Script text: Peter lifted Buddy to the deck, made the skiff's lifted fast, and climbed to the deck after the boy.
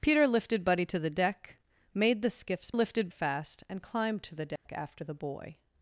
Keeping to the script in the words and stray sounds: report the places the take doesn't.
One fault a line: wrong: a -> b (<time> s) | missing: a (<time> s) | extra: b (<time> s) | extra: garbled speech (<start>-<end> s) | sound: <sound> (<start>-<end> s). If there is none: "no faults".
sound: dropout (4.6-4.7 s)